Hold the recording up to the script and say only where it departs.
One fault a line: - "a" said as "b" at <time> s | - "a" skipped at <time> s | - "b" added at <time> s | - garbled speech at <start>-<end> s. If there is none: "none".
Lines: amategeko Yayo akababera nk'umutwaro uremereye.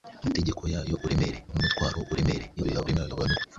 - "akababera" said as "uremereye" at 1.1 s
- garbled speech at 2.6-3.5 s